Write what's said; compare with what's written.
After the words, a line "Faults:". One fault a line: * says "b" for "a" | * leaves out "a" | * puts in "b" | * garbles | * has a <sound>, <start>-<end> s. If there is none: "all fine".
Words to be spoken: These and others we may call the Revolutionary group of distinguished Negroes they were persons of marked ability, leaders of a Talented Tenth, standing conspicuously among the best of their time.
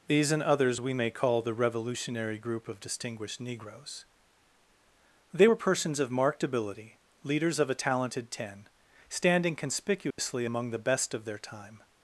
These and others we may call the Revolutionary group of distinguished Negroes they were persons of marked ability, leaders of a Talented Ten, standing conspicuously among the best of their time.
Faults:
* says "Ten" for "Tenth"
* has a dropout, 10.1-10.2 s